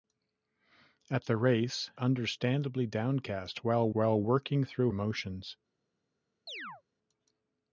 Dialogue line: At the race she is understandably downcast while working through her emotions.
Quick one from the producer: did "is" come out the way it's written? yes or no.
no